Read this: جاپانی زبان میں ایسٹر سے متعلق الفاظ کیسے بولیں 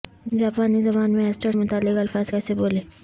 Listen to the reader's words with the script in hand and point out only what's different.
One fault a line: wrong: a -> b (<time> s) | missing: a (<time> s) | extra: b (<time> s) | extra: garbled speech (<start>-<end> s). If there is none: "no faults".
missing: سے (1.5 s)